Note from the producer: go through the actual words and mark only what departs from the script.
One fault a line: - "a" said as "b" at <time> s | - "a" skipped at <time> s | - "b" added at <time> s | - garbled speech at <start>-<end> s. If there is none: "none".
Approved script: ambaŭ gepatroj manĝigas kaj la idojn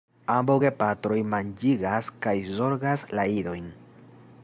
- "zorgas" added at 2.6 s